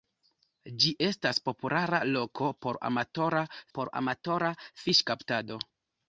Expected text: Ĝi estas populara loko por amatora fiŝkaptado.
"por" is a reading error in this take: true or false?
false